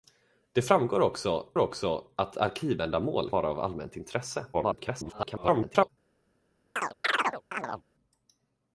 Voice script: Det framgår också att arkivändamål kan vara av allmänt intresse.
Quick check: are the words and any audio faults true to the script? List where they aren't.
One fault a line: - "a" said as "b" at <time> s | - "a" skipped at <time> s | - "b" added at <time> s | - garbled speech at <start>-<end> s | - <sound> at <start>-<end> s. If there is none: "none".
- "också" added at 1.6 s
- "kan" skipped at 3.3 s
- garbled speech at 4.5-5.9 s
- chirp at 6.8-7.8 s